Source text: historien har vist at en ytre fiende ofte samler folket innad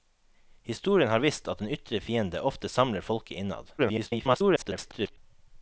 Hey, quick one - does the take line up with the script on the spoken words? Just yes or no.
no